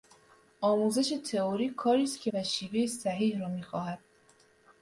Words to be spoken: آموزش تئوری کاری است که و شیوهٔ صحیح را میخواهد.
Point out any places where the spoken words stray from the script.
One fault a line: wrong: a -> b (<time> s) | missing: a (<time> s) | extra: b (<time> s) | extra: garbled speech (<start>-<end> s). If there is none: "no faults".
no faults